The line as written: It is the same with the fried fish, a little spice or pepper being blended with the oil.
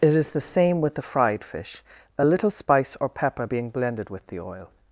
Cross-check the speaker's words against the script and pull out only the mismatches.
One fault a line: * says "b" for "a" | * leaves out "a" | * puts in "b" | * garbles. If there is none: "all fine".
all fine